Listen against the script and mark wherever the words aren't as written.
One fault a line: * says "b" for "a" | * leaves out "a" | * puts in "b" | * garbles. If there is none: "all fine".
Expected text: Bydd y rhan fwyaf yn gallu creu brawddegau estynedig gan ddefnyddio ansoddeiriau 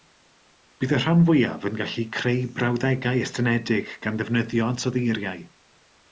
all fine